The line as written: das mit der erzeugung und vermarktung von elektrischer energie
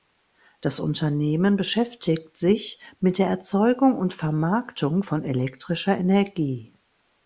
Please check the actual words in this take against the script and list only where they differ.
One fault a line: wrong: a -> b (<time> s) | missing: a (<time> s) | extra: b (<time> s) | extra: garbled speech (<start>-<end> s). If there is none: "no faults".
extra: unternehmen beschäftigt sich (0.8 s)